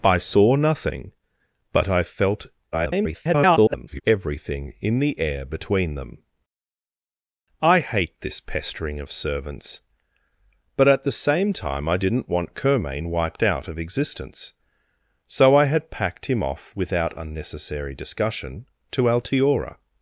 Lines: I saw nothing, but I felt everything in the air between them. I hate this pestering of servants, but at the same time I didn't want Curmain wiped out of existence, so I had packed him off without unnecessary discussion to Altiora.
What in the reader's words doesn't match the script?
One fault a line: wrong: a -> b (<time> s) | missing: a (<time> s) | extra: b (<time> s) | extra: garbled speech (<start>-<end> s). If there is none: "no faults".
extra: garbled speech (2.7-4.0 s)